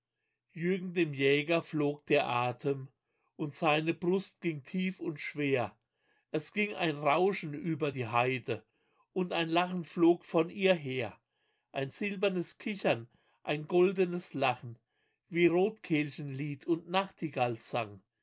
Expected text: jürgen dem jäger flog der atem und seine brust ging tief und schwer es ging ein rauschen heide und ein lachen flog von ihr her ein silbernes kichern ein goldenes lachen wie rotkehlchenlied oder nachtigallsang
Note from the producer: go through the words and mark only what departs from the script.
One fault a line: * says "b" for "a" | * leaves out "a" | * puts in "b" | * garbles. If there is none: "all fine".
* puts in "über die"
* says "und" for "oder"